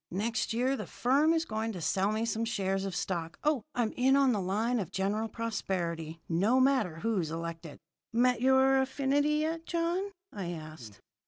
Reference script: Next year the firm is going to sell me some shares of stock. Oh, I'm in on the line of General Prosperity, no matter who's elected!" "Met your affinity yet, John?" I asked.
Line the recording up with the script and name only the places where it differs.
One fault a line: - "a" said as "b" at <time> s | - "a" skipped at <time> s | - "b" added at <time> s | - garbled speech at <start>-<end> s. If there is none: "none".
none